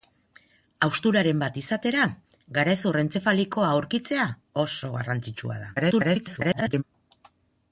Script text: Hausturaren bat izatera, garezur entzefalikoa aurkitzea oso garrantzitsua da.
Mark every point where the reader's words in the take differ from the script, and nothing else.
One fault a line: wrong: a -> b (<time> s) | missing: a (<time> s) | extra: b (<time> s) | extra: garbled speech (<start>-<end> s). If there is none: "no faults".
extra: garbled speech (5.8-6.8 s)